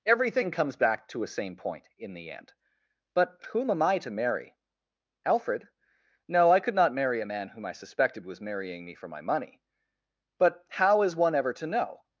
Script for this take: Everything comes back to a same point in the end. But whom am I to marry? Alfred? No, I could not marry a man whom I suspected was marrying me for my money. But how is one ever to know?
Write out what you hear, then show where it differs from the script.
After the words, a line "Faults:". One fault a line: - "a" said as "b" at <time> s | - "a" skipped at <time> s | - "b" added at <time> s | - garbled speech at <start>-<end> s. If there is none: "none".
Everything comes back to a same point in the end. But whom am I to marry? Alfred? No, I could not marry a man whom I suspected was marrying me for my money. But how is one ever to know?
Faults:
none